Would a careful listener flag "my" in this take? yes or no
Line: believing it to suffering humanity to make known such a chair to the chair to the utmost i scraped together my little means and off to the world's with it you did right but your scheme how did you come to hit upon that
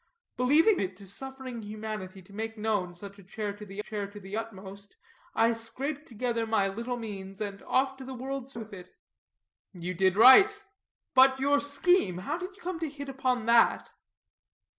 no